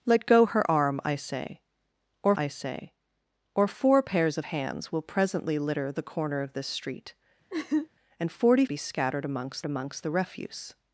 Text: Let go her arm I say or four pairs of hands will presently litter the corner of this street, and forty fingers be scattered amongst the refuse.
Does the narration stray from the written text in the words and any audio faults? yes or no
yes